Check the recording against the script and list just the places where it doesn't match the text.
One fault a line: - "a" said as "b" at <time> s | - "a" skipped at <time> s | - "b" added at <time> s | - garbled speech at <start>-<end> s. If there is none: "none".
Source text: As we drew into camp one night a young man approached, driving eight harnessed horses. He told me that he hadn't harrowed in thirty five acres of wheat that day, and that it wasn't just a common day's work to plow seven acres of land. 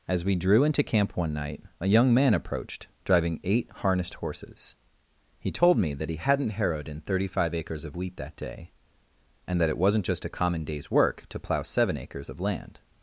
none